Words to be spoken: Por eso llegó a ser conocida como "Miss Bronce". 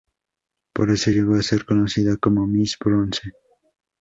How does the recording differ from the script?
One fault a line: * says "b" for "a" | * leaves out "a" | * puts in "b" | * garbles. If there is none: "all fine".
all fine